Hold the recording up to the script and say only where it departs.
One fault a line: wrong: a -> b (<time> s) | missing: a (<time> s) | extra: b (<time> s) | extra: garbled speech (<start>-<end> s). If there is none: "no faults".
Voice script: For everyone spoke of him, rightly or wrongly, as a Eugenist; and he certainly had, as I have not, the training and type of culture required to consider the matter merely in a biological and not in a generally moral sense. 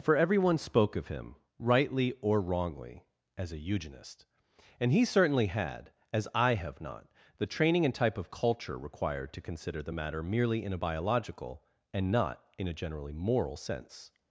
no faults